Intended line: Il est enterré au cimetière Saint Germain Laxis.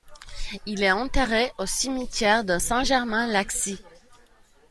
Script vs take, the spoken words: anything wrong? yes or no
yes